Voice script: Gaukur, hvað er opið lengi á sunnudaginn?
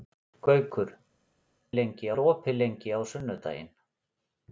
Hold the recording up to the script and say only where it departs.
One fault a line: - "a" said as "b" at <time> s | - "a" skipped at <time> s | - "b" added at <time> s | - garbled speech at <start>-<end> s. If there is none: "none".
- "hvað" said as "lengi" at 1.8 s